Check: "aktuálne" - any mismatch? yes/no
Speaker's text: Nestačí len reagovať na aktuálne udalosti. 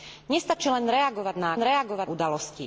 yes